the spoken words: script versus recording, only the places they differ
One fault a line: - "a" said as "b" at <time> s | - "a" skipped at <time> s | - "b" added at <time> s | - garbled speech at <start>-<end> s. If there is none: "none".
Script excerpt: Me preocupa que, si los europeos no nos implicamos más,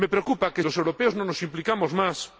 - "si" skipped at 0.6 s